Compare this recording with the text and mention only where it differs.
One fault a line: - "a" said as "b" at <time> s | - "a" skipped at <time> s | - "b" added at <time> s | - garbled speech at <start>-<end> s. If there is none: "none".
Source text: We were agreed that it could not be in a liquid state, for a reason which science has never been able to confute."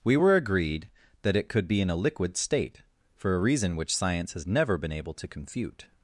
- "not" skipped at 1.7 s